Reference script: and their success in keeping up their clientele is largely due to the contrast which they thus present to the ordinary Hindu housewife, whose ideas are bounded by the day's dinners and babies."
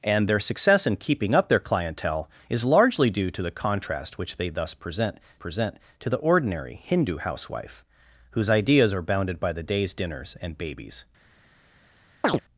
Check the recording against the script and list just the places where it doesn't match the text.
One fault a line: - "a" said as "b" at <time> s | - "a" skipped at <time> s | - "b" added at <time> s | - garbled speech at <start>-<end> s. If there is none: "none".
- "present" added at 5.3 s